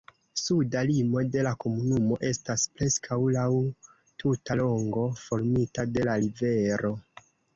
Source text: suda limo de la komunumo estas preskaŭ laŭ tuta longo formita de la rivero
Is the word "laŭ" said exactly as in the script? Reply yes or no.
yes